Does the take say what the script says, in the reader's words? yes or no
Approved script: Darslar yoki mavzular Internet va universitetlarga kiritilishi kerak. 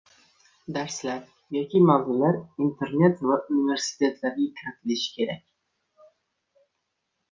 yes